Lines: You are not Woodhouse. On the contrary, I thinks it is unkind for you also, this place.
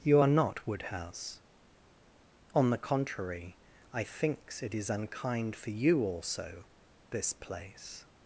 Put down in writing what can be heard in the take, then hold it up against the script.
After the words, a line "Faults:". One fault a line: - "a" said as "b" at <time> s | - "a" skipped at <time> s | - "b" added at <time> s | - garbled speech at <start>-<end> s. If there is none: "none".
You are not Woodhouse. On the contrary, I thinks it is unkind for you also, this place.
Faults:
none